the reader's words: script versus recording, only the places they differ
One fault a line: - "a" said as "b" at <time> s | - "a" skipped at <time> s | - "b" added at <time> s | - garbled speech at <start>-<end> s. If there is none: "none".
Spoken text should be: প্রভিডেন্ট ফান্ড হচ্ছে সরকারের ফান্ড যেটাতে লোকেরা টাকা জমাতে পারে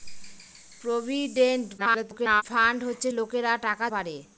- garbled speech at 1.8-2.4 s
- "সরকারের ফান্ড যেটাতে" skipped at 3.1 s
- "জমাতে" skipped at 3.9 s